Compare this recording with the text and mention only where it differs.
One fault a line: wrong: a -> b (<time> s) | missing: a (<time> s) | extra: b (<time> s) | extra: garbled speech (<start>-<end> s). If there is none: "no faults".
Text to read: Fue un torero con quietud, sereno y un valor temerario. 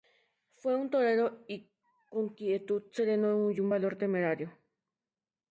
no faults